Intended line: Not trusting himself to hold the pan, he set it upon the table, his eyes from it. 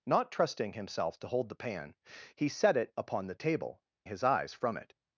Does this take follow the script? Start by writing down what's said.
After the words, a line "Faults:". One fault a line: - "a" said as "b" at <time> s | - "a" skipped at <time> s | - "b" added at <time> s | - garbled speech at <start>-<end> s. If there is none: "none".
Not trusting himself to hold the pan, he set it upon the table, his eyes from it.
Faults:
none